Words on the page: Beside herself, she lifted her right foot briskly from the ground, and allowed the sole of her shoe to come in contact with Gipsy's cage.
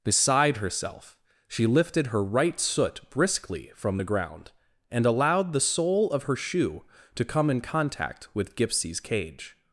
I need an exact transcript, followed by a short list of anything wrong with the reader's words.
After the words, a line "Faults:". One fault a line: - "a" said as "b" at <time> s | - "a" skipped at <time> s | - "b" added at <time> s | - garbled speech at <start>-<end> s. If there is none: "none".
Beside herself, she lifted her right soot briskly from the ground, and allowed the sole of her shoe to come in contact with Gipsy's cage.
Faults:
- "foot" said as "soot" at 2.6 s